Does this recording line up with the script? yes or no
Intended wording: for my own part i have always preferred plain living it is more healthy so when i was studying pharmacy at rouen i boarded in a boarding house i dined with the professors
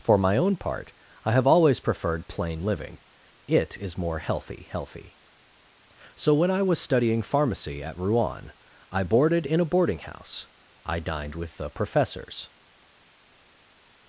no